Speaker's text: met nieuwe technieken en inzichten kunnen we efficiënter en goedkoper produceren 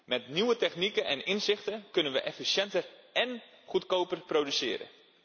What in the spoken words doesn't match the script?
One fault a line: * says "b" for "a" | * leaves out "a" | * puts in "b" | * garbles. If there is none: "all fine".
all fine